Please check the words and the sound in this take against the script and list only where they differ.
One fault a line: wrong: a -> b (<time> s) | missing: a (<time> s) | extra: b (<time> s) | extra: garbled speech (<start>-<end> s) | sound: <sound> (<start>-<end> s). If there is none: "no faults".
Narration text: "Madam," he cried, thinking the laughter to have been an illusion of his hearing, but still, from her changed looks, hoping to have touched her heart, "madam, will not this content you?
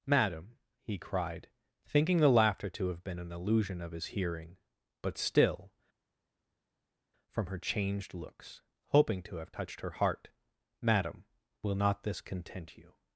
no faults